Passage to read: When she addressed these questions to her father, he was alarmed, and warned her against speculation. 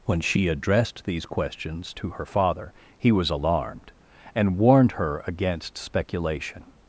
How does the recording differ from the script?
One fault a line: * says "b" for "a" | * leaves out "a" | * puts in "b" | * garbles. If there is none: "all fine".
all fine